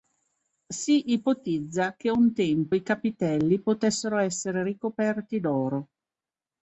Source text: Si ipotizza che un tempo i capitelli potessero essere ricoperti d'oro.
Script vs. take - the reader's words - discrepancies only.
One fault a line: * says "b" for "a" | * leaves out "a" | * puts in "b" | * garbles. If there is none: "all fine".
all fine